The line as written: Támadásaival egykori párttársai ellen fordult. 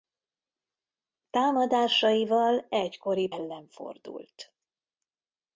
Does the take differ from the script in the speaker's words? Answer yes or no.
yes